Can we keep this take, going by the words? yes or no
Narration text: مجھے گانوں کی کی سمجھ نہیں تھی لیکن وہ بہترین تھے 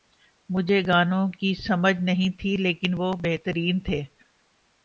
no